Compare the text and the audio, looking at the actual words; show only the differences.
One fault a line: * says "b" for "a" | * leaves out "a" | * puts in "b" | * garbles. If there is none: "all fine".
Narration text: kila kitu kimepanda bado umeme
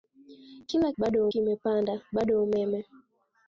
* says "bado" for "kitu"